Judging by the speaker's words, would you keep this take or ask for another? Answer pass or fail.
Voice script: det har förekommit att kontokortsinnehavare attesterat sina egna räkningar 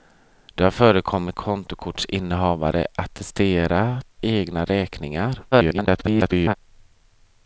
fail